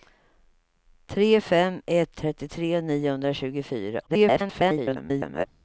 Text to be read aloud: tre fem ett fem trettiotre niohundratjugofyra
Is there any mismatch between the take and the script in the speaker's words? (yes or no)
yes